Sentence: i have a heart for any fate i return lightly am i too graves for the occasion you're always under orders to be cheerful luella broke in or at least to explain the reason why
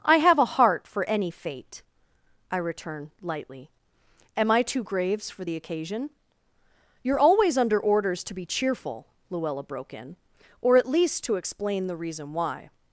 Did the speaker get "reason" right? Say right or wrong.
right